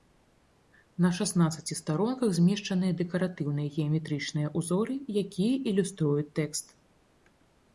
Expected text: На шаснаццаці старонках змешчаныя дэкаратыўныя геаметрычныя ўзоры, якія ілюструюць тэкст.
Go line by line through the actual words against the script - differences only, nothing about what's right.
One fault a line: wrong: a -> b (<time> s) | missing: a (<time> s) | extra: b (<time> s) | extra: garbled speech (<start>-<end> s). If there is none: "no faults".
no faults